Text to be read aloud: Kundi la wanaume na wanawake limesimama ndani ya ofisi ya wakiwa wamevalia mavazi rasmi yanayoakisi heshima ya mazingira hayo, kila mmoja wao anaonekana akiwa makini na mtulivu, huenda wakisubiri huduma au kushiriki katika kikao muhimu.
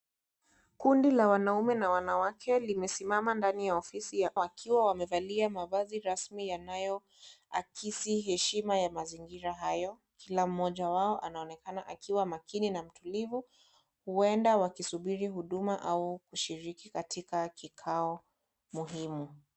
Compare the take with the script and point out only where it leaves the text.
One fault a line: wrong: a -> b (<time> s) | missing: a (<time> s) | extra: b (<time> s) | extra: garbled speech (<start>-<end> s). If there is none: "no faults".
no faults